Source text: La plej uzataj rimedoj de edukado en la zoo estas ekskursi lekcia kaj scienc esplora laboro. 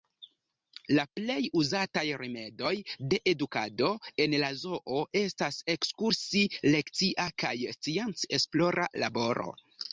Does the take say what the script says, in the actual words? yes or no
yes